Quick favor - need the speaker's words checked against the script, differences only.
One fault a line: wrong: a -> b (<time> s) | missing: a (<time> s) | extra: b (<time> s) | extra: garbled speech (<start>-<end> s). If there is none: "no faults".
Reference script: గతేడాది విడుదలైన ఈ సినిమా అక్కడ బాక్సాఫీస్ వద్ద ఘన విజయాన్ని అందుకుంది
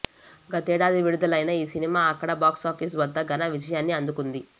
no faults